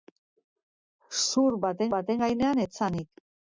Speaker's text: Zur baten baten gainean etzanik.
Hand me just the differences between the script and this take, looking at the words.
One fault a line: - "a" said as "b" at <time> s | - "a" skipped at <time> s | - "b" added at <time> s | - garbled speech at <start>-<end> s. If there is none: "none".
none